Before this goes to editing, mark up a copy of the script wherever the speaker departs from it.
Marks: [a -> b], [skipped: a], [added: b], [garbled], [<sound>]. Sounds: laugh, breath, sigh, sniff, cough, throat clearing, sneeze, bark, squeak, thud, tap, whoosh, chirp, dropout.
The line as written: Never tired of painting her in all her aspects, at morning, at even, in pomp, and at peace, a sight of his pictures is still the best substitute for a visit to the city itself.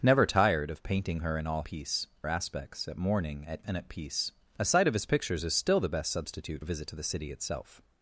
Never tired of painting her in all [her -> peace] aspects, at morning, at [skipped: even, in pomp,] and at peace, a sight of his pictures is still the best substitute [skipped: for] a visit to the city itself.